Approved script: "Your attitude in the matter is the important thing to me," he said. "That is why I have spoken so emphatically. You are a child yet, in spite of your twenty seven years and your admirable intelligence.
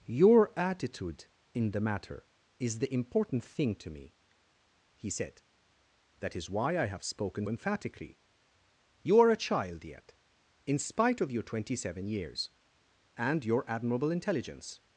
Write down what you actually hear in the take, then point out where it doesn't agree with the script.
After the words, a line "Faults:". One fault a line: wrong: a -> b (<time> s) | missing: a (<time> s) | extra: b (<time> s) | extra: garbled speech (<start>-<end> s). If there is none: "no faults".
"Your attitude in the matter is the important thing to me," he said. "That is why I have spoken emphatically. You are a child yet, in spite of your twenty seven years and your admirable intelligence.
Faults:
missing: so (7.5 s)